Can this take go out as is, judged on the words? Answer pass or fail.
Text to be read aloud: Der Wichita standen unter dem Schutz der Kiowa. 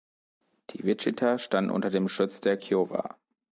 fail